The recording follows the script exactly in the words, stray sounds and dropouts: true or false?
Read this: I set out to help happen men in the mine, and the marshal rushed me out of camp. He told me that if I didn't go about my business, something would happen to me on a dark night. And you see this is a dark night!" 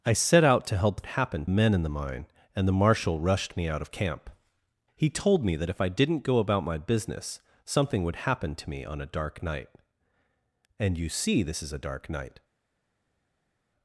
true